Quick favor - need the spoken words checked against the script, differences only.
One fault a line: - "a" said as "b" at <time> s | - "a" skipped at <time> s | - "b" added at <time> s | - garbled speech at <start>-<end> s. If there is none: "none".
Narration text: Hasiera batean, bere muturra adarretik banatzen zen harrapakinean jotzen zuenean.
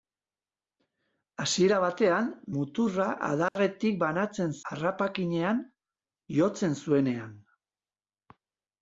- "bere" skipped at 2.3 s
- "zen" skipped at 4.5 s